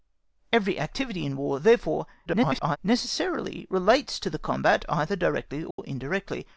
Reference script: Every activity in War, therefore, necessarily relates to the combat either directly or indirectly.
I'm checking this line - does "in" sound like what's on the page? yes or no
yes